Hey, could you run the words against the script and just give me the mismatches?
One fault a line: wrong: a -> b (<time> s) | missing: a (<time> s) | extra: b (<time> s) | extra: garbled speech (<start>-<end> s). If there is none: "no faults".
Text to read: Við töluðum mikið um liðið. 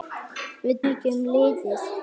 missing: töluðum (0.8 s)